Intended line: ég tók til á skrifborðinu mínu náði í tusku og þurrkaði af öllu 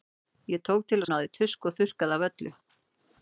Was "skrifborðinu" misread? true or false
true